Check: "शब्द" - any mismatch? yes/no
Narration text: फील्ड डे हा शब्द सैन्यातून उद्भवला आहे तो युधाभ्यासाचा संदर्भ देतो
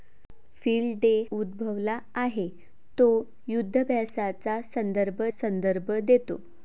yes